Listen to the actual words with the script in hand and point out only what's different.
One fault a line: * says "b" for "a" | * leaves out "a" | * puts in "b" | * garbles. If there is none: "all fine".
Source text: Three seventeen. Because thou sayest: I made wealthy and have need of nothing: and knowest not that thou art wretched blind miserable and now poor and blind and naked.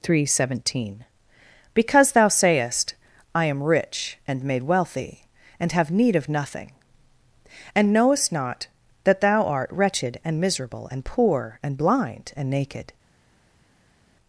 * puts in "am rich and"
* says "and" for "blind"
* leaves out "now"